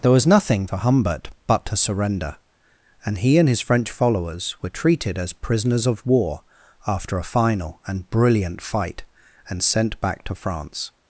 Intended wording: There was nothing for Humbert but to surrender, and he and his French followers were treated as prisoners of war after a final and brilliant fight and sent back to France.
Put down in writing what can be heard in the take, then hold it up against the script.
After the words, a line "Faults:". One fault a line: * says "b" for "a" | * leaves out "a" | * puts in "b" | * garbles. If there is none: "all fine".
There was nothing for Humbert but to surrender, and he and his French followers were treated as prisoners of war after a final and brilliant fight and sent back to France.
Faults:
all fine